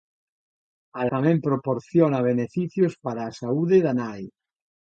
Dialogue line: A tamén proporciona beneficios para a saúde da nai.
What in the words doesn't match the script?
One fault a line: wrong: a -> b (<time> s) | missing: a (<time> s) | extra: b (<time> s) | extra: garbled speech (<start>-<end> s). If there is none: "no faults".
no faults